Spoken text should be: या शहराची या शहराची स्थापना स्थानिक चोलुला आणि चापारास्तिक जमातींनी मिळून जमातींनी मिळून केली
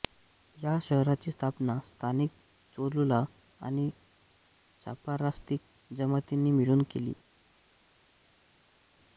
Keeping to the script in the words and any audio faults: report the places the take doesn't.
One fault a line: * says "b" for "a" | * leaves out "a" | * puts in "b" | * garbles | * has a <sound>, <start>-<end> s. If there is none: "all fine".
* leaves out "या शहराची"
* leaves out "जमातींनी मिळून"